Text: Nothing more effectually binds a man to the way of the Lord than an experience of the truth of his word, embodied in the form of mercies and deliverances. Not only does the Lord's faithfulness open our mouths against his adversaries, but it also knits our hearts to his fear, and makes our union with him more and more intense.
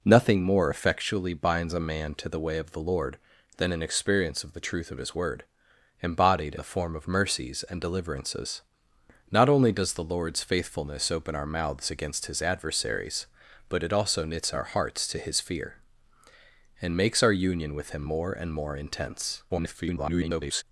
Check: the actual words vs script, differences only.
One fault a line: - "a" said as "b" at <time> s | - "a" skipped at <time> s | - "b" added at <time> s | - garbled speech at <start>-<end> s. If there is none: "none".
- "in" skipped at 6.5 s
- garbled speech at 19.5-20.6 s